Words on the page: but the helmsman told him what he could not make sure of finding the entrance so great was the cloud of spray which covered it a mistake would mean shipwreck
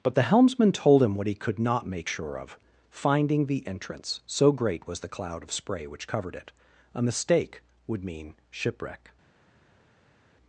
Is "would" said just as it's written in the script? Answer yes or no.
yes